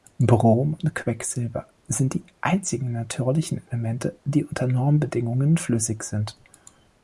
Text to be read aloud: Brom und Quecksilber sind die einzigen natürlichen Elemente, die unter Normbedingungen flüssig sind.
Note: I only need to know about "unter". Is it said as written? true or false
true